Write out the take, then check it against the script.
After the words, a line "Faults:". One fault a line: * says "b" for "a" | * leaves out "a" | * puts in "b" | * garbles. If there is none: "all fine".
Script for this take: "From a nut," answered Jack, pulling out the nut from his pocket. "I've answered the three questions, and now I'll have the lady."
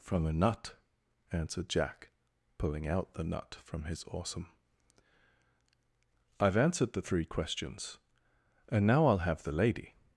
"From a nut," answered Jack, pulling out the nut from his awesome. "I've answered the three questions, and now I'll have the lady."
Faults:
* says "awesome" for "pocket"